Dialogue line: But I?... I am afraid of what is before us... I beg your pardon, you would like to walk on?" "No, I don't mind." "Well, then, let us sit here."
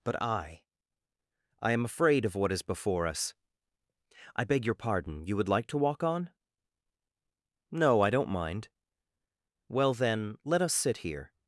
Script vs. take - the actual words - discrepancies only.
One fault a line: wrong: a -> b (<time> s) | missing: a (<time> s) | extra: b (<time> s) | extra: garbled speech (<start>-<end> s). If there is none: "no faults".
no faults